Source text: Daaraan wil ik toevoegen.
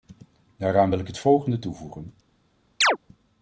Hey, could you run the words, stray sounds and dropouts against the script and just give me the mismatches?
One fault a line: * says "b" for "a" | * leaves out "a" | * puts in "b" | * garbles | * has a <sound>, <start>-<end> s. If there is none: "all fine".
* puts in "het volgende"
* has a chirp, 2.8-3.0 s